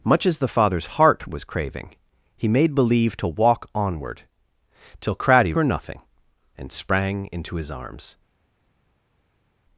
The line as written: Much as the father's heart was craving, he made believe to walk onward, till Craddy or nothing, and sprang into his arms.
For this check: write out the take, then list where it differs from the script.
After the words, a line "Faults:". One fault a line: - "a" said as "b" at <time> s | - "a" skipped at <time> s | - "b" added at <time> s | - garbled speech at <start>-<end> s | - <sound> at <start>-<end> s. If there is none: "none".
Much as the father's heart was craving, he made believe to walk onward, till Craddy or nothing, and sprang into his arms.
Faults:
none